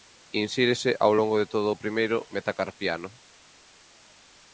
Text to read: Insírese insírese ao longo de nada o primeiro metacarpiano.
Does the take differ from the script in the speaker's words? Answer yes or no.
yes